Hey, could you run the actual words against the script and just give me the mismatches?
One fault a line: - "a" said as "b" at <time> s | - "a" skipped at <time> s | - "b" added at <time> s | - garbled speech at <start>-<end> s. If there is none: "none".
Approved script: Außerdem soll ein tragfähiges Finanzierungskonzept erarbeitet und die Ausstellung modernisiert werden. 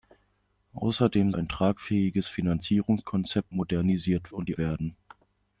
- "soll" skipped at 1.3 s
- "erarbeitet" said as "modernisiert" at 3.5 s
- "Ausstellung modernisiert" skipped at 4.6 s